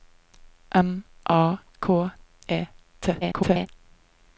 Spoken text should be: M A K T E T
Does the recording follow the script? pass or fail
fail